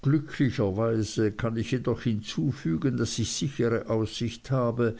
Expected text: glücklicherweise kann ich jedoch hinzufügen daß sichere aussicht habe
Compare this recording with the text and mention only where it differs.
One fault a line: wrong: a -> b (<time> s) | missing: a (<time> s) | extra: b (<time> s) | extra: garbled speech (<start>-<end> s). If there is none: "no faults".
extra: ich (3.2 s)